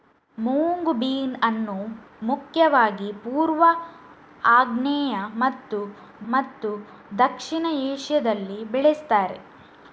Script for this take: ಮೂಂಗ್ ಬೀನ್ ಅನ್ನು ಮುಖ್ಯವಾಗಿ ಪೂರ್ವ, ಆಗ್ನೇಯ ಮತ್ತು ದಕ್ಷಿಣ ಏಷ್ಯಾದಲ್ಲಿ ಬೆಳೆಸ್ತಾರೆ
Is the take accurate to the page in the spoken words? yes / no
no